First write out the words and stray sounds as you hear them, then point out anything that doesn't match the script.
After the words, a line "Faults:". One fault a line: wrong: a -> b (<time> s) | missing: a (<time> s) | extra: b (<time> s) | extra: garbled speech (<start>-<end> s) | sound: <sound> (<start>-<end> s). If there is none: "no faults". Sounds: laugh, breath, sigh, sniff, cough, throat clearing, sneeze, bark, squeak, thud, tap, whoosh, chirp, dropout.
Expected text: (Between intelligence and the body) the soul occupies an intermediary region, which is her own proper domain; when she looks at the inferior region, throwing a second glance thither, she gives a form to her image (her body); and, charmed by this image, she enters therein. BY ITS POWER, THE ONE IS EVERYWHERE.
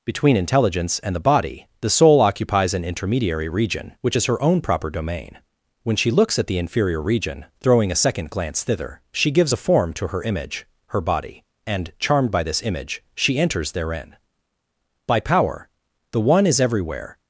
(Between intelligence and the body) the soul occupies an intermediary region, which is her own proper domain; when she looks at the inferior region, throwing a second glance thither, she gives a form to her image (her body); and, charmed by this image, she enters therein. BY POWER, THE ONE IS EVERYWHERE.
Faults:
missing: ITS (15.2 s)